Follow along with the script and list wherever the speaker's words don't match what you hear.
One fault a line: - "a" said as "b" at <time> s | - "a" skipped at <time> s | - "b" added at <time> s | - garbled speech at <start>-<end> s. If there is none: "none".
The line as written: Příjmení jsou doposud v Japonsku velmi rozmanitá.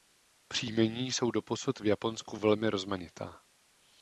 none